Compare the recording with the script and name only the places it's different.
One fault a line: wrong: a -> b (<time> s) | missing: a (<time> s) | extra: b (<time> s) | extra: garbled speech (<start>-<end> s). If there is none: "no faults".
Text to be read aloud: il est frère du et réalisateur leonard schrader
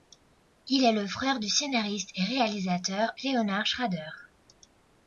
extra: le (0.9 s)
extra: scénariste (1.5 s)